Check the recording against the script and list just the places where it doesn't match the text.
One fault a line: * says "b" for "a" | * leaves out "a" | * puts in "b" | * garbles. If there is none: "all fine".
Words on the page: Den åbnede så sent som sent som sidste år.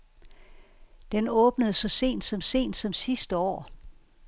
all fine